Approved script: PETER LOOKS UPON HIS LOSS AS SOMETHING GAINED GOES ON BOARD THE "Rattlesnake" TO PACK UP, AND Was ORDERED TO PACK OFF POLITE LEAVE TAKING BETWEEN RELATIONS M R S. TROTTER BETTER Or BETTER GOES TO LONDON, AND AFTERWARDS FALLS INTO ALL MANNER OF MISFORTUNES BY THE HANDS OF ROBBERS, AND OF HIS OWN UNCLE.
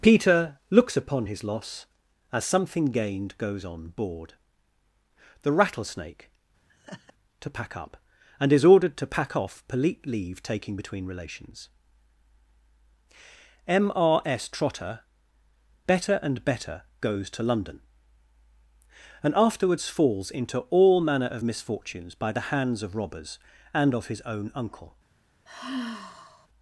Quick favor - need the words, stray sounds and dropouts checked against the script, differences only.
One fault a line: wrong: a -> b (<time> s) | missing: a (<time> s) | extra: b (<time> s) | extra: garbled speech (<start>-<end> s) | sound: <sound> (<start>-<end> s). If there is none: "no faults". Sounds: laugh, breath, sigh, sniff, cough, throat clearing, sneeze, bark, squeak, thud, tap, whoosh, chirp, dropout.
sound: laugh (6.7-7.1 s)
wrong: Was -> IS (8.5 s)
wrong: Or -> AND (16.2 s)
sound: sigh (25.5-26.5 s)